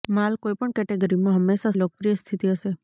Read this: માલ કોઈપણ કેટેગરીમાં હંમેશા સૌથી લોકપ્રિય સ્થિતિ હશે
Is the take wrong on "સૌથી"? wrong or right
wrong